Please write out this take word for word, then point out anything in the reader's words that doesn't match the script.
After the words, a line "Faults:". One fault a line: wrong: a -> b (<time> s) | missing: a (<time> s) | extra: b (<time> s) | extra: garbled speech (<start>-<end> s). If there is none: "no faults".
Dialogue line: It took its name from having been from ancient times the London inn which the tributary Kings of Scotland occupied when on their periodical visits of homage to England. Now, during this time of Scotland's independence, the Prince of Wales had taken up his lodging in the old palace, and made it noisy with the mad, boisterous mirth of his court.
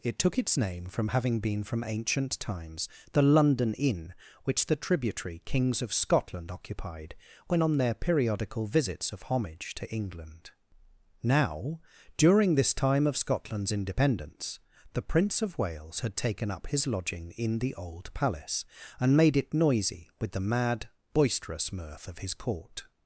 It took its name from having been from ancient times the London inn which the tributary Kings of Scotland occupied when on their periodical visits of homage to England. Now, during this time of Scotland's independence, the Prince of Wales had taken up his lodging in the old palace, and made it noisy with the mad, boisterous mirth of his court.
Faults:
no faults